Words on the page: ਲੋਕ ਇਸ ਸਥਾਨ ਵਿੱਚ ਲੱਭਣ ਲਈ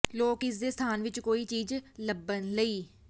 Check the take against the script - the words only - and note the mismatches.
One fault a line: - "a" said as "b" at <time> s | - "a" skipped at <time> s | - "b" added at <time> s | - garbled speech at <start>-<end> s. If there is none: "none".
- "ਦੇ" added at 0.6 s
- "ਕੋਈ ਚੀਜ਼" added at 1.2 s